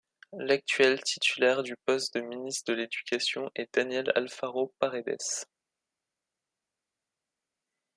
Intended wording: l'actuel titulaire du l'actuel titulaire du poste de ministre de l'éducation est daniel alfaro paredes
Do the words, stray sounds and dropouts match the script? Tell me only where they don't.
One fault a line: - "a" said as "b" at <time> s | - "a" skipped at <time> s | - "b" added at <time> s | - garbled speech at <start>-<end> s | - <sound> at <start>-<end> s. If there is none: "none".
- "l'actuel titulaire du" skipped at 1.8 s